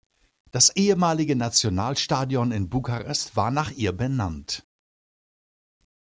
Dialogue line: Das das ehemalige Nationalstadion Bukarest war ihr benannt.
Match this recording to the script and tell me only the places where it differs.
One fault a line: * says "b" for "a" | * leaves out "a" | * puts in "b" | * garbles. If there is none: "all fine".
* leaves out "das"
* puts in "in"
* puts in "nach"